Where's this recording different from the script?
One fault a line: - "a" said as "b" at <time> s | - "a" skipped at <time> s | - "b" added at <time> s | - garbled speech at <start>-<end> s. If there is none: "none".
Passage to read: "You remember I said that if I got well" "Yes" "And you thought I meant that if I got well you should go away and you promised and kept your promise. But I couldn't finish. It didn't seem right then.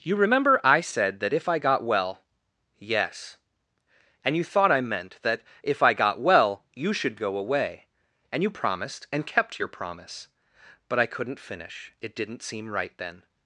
none